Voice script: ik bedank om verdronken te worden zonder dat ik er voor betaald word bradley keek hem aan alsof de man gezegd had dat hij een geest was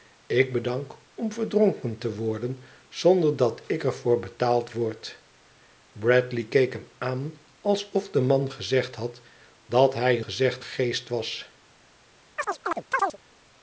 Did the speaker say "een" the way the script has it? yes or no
no